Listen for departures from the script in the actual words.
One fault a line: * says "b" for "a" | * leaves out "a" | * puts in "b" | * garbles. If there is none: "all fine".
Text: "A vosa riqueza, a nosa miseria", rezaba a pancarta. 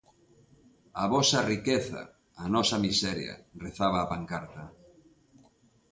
all fine